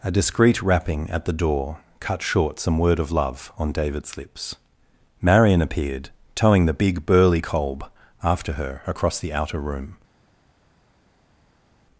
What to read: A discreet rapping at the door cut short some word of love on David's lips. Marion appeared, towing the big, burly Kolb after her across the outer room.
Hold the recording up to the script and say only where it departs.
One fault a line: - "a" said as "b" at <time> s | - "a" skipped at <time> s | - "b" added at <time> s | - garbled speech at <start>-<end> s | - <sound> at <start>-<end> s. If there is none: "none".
none